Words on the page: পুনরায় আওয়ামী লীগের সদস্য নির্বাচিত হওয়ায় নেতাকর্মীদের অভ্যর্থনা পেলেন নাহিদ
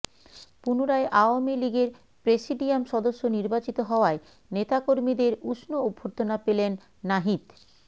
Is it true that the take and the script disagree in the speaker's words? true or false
true